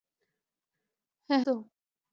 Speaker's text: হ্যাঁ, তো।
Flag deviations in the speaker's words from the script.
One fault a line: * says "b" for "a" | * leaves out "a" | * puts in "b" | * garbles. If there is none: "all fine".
all fine